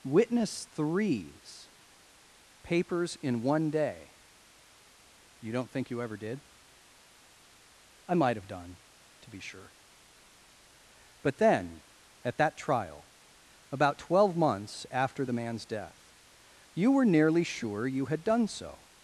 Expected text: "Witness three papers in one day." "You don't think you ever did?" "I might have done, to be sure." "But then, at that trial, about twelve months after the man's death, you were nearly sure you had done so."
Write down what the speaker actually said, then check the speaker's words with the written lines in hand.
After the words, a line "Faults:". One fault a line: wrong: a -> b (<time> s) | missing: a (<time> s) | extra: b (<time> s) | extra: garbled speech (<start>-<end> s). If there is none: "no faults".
"Witness threes papers in one day." "You don't think you ever did?" "I might have done, to be sure." "But then, at that trial, about twelve months after the man's death, you were nearly sure you had done so."
Faults:
wrong: three -> threes (0.7 s)